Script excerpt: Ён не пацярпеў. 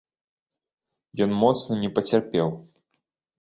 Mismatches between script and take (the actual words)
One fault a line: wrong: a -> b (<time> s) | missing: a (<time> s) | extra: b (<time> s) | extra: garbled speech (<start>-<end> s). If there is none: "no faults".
extra: моцна (1.4 s)